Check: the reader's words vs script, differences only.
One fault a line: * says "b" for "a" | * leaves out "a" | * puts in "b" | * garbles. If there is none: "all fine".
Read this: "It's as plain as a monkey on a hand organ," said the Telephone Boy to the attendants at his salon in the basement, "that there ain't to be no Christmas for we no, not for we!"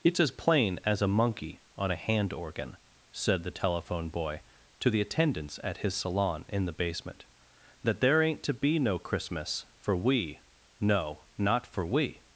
all fine